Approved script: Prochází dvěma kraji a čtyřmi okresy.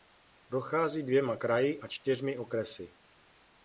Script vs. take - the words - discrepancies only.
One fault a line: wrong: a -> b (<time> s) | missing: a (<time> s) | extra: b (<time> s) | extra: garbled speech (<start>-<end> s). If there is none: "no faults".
no faults